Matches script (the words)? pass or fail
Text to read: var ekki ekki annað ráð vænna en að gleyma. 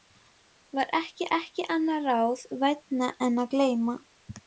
pass